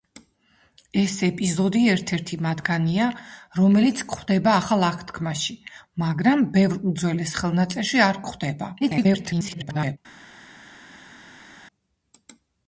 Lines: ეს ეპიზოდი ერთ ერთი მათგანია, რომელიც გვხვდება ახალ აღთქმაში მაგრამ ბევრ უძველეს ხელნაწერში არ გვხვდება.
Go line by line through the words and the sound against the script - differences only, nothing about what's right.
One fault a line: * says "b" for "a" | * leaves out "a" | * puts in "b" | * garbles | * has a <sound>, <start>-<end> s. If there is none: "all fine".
* garbles